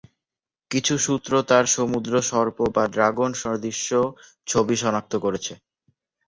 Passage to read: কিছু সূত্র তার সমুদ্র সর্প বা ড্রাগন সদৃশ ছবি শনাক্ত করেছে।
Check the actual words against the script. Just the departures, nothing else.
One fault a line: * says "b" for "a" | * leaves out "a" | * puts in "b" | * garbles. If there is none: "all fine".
all fine